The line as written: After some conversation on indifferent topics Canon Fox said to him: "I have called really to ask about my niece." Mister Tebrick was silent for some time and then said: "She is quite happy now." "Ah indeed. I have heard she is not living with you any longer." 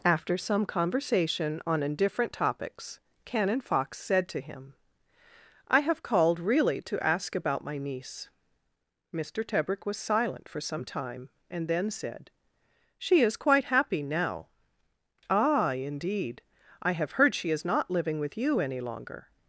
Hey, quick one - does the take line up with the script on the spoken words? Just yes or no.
yes